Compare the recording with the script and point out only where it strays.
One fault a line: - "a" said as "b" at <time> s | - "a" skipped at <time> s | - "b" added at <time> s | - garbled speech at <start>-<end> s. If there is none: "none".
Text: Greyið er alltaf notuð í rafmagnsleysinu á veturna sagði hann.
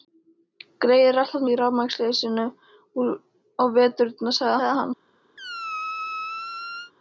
- "notuð" skipped at 1.4 s
- "sagði" added at 4.6 s